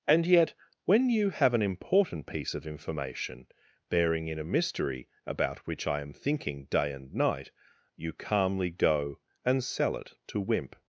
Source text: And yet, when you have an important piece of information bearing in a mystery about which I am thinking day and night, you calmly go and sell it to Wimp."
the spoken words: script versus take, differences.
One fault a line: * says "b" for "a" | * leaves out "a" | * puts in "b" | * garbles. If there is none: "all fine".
all fine